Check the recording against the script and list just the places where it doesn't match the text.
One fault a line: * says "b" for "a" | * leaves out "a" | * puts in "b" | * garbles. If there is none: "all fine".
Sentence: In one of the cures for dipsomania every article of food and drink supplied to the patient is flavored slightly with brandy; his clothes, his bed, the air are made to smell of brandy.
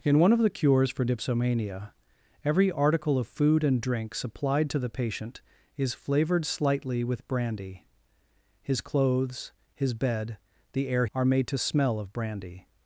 all fine